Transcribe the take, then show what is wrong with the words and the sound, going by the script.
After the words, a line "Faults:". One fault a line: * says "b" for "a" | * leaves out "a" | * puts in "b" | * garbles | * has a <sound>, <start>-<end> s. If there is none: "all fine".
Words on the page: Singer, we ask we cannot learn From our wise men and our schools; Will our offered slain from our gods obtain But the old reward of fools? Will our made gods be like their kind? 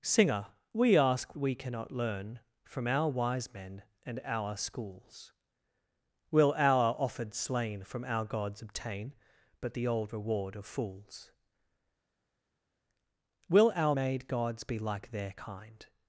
Singer, we ask we cannot learn From our wise men and our schools; Will our offered slain from our gods obtain But the old reward of fools? Will our made gods be like their kind?
Faults:
all fine